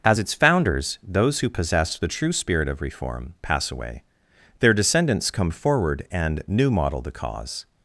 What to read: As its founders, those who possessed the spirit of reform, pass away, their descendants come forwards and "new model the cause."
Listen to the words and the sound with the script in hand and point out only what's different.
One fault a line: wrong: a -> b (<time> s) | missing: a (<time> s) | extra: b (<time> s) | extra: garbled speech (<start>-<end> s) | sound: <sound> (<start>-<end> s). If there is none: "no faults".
extra: true (2.1 s)
wrong: forwards -> forward (5.5 s)